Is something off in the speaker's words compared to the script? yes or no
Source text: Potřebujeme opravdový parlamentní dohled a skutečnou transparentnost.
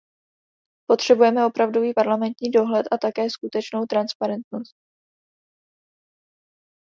yes